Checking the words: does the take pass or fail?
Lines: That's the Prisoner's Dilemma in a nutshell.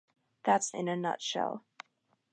fail